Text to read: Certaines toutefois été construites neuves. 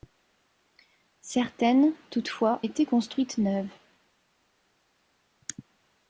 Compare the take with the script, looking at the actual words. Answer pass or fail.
pass